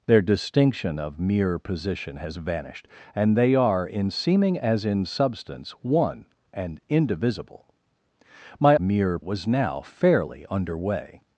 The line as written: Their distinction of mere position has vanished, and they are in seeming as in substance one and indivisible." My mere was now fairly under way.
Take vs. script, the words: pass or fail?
pass